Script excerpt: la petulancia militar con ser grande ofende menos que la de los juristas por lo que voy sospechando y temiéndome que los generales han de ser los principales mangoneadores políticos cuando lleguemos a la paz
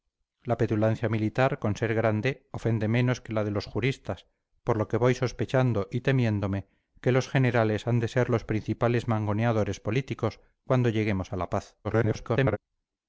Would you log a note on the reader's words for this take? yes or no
yes